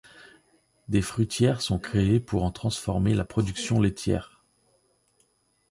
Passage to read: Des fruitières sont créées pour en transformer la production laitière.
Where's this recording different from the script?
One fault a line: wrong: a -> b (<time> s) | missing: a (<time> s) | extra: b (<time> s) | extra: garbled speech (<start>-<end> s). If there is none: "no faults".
no faults